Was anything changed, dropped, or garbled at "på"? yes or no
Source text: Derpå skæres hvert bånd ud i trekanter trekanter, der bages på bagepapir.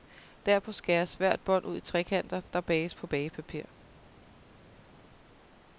no